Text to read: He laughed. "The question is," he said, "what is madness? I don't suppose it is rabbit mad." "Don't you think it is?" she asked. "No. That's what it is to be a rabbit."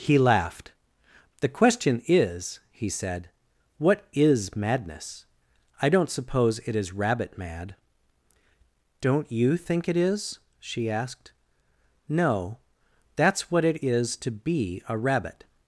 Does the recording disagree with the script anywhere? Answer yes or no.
no